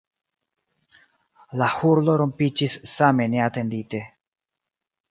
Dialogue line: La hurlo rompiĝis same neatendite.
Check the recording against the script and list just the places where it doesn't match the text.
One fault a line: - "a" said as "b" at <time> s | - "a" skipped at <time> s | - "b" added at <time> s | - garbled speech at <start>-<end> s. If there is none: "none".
none